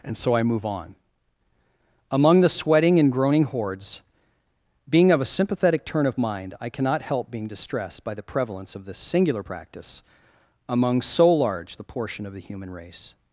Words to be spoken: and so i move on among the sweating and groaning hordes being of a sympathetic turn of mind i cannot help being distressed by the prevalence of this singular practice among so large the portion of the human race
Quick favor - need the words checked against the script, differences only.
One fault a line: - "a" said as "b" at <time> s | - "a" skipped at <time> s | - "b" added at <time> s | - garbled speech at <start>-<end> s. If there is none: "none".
none